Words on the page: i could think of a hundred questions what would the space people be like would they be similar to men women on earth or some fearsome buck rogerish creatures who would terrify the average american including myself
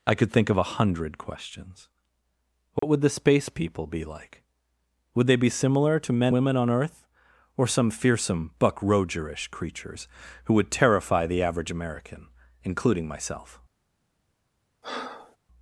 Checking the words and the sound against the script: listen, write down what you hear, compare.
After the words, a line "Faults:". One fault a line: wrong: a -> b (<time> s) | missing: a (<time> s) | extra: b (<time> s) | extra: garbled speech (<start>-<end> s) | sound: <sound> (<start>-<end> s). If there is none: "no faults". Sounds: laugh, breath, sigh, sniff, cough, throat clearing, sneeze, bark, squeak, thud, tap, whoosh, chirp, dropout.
i could think of a hundred questions what would the space people be like would they be similar to men women on earth or some fearsome buck rogerish creatures who would terrify the average american including myself
Faults:
sound: dropout (2.8-2.8 s)
sound: breath (14.8-15.4 s)